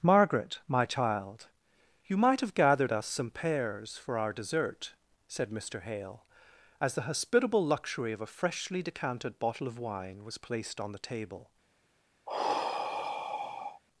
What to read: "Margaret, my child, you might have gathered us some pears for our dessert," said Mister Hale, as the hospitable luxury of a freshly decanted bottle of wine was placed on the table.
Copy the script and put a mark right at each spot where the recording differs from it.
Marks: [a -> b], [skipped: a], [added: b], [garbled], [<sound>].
"Margaret, my child, you might have gathered us some pears for our dessert," said Mister Hale, as the hospitable luxury of a freshly decanted bottle of wine was placed on the table. [sigh]